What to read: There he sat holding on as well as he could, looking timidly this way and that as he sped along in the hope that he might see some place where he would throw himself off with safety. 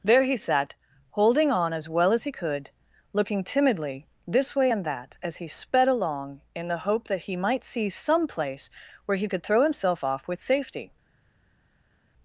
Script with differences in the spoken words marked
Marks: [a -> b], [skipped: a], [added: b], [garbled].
There he sat holding on as well as he could, looking timidly this way and that as he sped along in the hope that he might see some place where he [would -> could] throw himself off with safety.